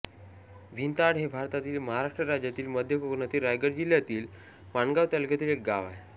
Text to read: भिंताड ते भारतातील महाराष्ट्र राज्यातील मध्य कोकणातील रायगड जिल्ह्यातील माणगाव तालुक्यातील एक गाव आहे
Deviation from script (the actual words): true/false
true